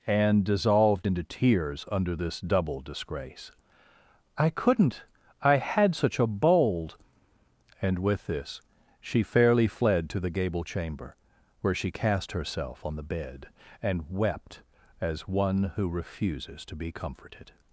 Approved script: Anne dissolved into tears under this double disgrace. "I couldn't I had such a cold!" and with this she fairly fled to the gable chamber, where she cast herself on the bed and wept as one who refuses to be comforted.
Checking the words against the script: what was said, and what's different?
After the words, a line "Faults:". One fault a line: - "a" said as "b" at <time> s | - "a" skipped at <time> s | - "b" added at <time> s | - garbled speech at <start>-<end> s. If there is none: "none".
Anne dissolved into tears under this double disgrace. "I couldn't I had such a bold!" and with this she fairly fled to the gable chamber, where she cast herself on the bed and wept as one who refuses to be comforted.
Faults:
- "cold" said as "bold" at 6.3 s